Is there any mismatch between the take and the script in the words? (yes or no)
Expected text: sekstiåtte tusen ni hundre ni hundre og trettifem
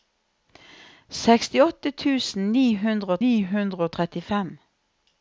no